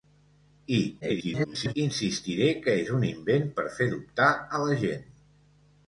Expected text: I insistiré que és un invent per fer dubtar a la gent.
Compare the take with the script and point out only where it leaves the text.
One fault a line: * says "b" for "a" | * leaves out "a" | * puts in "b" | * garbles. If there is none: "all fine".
* garbles